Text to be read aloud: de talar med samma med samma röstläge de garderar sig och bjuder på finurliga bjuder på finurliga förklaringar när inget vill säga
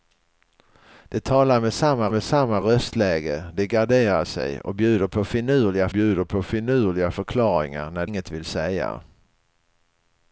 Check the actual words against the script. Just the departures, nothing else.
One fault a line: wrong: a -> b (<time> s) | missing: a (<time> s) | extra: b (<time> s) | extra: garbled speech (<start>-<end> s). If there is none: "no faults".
no faults